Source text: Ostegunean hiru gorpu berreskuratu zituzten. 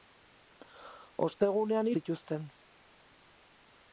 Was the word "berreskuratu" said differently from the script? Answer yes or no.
yes